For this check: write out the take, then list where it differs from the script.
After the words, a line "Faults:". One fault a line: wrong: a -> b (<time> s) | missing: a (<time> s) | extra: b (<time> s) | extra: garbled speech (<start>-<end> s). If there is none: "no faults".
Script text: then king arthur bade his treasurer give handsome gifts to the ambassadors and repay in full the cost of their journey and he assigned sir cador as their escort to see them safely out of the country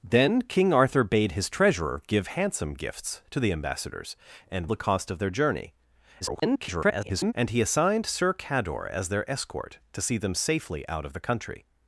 then king arthur bade his treasurer give handsome gifts to the ambassadors and the cost of their journey [garbled] and he assigned sir cador as their escort to see them safely out of the country
Faults:
missing: repay in full (4.7 s)
extra: garbled speech (6.2-7.3 s)